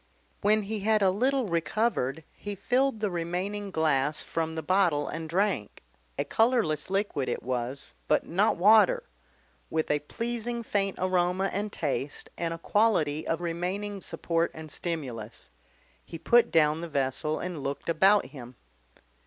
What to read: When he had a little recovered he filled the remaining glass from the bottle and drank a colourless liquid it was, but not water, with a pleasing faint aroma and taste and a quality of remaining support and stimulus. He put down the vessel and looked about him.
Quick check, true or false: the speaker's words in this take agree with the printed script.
true